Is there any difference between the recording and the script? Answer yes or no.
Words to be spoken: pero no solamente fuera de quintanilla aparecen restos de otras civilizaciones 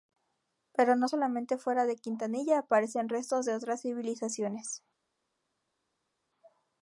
no